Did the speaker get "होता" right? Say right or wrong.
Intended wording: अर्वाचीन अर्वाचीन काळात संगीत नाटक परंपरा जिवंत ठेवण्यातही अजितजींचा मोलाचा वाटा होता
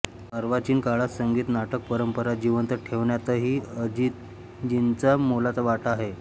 wrong